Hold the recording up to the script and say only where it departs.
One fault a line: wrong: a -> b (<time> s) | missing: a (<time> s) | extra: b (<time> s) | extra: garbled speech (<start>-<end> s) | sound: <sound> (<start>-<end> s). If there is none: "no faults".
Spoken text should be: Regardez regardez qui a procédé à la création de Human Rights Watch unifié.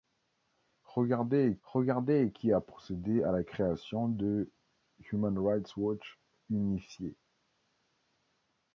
no faults